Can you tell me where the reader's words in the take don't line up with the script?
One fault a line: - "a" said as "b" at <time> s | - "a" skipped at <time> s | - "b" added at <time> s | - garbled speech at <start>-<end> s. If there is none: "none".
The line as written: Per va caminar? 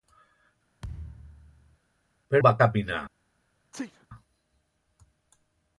none